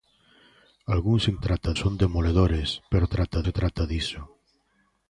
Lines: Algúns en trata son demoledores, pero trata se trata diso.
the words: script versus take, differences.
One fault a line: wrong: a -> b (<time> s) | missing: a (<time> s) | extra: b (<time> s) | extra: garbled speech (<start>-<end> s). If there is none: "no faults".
no faults